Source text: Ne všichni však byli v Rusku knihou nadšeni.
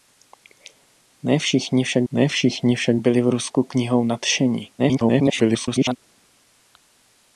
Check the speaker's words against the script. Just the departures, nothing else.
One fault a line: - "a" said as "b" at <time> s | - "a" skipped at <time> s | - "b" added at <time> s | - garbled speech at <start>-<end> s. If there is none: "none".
- "ne všichni však" added at 2.1 s
- garbled speech at 4.8-6.0 s